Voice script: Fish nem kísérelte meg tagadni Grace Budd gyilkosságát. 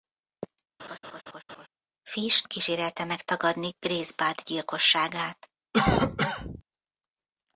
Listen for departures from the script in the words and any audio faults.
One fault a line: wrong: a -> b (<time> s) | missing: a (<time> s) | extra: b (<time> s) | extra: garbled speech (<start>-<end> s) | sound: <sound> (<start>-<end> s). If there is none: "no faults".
sound: laugh (0.8-1.7 s)
missing: nem (2.5 s)
sound: cough (5.7-6.6 s)